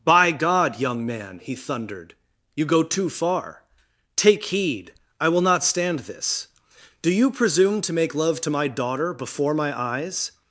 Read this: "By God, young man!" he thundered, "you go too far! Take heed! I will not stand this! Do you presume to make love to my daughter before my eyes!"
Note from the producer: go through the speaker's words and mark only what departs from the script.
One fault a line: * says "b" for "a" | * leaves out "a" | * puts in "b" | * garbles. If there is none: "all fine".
all fine